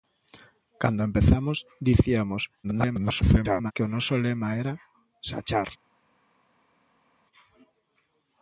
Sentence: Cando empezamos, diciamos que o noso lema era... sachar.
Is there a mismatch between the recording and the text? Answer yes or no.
yes